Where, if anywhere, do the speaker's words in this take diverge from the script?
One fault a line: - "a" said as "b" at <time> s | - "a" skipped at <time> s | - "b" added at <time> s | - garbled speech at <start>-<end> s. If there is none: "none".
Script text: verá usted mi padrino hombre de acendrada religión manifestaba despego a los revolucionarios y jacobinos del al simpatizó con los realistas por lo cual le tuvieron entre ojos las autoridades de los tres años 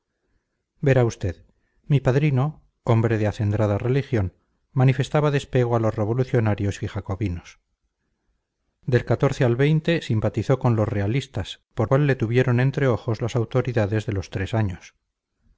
- "lo" skipped at 11.9 s